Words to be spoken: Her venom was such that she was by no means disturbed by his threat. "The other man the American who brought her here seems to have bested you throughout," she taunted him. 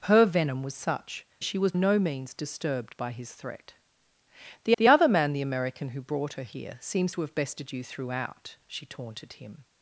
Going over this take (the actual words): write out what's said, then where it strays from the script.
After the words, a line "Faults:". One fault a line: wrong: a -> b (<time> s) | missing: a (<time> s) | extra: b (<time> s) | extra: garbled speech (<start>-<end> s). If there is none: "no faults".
Her venom was such she was no means disturbed by his threat. "The the other man the American who brought her here seems to have bested you throughout," she taunted him.
Faults:
missing: that (1.3 s)
missing: by (1.7 s)
extra: the (4.8 s)